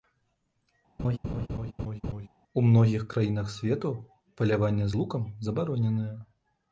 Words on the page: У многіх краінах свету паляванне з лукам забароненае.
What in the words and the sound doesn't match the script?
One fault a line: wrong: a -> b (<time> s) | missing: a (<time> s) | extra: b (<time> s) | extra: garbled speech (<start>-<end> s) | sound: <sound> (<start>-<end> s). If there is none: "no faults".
sound: laugh (1.0-2.3 s)